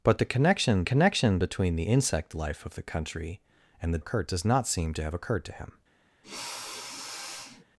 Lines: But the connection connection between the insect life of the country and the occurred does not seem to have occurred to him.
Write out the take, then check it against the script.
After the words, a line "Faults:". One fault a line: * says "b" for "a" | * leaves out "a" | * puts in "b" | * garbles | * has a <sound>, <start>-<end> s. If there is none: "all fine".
But the connection connection between the insect life of the country and the occurred does not seem to have occurred to him.
Faults:
* has a sniff, 6.2-7.6 s